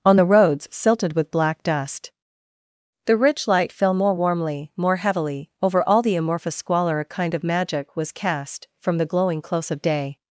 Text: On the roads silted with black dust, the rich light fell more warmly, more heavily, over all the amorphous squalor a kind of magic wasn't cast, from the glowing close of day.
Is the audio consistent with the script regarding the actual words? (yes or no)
no